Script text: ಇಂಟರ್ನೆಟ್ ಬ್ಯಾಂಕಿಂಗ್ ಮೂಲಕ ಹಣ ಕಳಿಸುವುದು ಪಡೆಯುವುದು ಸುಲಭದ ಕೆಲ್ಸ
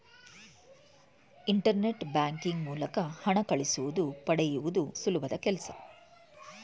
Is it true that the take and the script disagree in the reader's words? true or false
false